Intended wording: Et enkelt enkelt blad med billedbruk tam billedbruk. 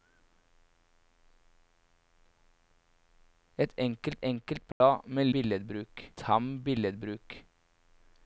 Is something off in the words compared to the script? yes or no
no